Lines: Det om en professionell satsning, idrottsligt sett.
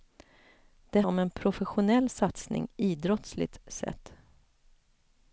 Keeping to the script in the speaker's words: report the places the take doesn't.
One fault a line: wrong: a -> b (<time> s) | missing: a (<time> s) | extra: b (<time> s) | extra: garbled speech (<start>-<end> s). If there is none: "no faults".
no faults